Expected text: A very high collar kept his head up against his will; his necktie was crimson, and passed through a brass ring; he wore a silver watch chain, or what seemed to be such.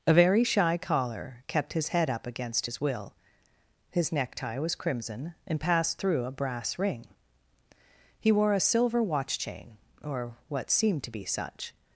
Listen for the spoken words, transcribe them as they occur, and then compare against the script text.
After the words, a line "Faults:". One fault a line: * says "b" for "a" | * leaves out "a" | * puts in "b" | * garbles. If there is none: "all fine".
A very shy collar kept his head up against his will; his necktie was crimson, and passed through a brass ring; he wore a silver watch chain, or what seemed to be such.
Faults:
* says "shy" for "high"